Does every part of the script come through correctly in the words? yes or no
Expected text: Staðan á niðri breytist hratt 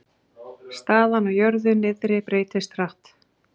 no